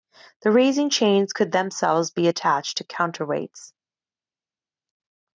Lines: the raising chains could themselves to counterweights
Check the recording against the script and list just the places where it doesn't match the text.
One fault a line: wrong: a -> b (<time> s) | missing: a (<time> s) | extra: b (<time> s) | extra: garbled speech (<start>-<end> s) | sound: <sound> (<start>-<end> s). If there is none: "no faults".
extra: be attached (2.1 s)